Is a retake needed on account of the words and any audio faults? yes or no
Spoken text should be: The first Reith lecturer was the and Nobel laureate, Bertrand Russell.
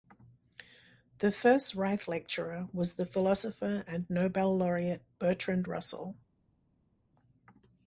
yes